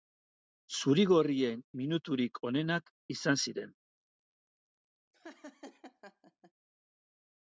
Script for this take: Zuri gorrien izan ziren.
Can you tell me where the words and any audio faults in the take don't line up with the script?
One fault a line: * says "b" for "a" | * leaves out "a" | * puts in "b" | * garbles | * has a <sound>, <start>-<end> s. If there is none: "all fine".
* puts in "minuturik onenak"
* has a laugh, 5.1-6.5 s